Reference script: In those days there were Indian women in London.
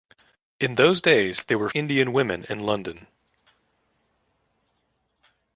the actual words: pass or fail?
pass